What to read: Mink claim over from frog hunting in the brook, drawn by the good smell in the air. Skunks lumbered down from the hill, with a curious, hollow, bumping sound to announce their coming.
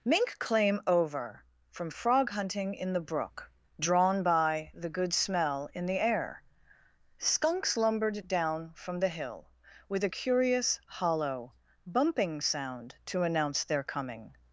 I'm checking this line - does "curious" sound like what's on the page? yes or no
yes